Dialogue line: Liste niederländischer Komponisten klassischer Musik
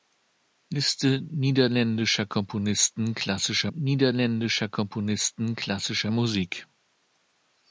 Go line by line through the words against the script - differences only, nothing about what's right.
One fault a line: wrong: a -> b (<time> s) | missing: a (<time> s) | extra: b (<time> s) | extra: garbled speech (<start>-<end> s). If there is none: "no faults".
extra: niederländischer Komponisten klassischer (3.7 s)